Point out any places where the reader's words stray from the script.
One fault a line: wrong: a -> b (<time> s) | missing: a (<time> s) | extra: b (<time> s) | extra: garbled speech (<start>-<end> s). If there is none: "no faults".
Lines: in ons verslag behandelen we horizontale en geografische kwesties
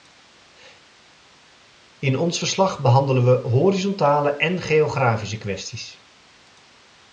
no faults